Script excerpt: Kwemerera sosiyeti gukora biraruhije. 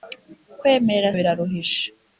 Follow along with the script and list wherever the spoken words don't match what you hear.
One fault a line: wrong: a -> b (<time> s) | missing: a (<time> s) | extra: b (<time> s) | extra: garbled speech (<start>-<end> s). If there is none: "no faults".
missing: sosiyeti gukora (1.1 s)